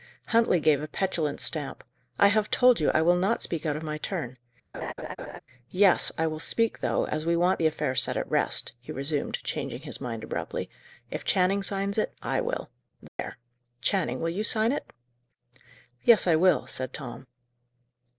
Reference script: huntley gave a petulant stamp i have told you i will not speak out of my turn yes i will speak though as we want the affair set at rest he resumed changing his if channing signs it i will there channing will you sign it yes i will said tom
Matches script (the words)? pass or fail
fail